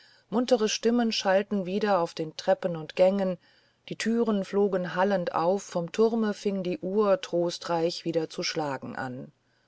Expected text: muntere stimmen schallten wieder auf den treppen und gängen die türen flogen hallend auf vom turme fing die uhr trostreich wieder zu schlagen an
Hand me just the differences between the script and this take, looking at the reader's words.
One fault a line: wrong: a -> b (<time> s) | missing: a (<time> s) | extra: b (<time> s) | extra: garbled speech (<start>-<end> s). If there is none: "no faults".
no faults